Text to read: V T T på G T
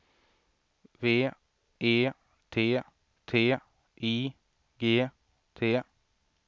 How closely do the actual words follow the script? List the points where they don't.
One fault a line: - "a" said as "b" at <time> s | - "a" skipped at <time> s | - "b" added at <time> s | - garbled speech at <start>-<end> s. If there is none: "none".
- "E" added at 1.8 s
- "på" said as "I" at 3.5 s